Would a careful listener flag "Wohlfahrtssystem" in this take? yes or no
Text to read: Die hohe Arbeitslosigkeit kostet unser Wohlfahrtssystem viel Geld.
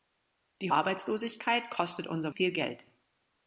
yes